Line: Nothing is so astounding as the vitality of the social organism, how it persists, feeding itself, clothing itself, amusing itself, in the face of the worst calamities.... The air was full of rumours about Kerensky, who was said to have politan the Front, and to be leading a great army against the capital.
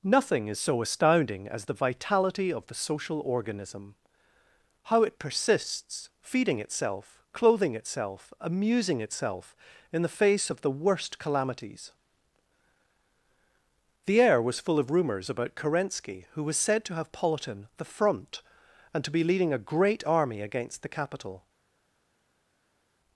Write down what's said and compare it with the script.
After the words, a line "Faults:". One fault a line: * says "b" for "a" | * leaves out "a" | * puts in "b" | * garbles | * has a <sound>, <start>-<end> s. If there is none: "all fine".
Nothing is so astounding as the vitality of the social organism, how it persists, feeding itself, clothing itself, amusing itself, in the face of the worst calamities.... The air was full of rumours about Kerensky, who was said to have politan the Front, and to be leading a great army against the capital.
Faults:
all fine